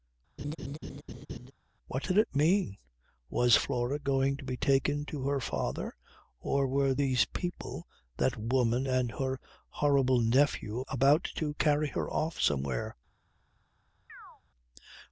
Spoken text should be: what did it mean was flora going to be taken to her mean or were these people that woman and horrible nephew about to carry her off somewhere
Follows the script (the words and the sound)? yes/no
no